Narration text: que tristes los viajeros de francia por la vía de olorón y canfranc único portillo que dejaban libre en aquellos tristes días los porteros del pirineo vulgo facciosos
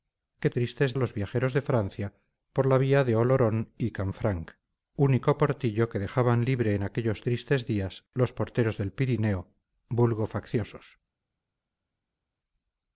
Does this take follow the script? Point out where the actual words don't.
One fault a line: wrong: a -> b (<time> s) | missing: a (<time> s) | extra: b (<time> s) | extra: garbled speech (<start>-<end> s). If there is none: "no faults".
no faults